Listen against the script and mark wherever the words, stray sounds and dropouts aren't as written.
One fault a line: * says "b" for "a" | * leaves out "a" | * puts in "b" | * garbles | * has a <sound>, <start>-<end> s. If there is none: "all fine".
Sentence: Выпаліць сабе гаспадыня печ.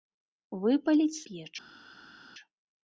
* leaves out "сабе гаспадыня"